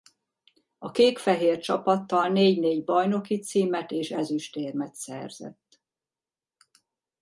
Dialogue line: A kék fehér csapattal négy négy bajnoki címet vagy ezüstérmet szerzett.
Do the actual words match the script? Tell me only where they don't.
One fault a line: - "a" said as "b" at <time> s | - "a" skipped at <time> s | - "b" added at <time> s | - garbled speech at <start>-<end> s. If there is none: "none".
- "vagy" said as "és" at 3.9 s